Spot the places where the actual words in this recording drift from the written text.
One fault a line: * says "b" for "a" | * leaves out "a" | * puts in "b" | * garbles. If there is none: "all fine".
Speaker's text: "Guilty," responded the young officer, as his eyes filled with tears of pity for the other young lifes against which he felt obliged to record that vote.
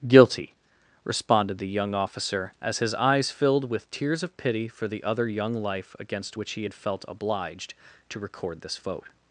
* says "life" for "lifes"
* puts in "had"
* says "this" for "that"